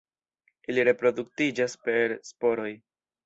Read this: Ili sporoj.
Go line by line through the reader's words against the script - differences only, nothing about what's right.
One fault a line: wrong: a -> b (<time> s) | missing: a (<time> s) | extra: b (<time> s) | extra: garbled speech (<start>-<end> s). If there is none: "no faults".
extra: reproduktiĝas per (0.9 s)